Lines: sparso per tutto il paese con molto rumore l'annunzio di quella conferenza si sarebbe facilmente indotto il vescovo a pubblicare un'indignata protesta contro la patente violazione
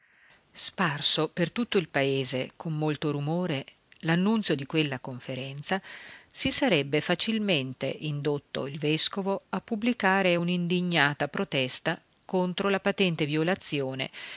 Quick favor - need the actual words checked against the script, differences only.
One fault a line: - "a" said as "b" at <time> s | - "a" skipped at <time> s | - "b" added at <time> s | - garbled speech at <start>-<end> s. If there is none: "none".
none